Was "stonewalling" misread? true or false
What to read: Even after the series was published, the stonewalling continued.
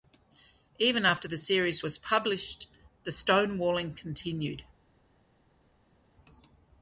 false